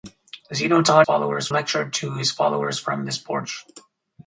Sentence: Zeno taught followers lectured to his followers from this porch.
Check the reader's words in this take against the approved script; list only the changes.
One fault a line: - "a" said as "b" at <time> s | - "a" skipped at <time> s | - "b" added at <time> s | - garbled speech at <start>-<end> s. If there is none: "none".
none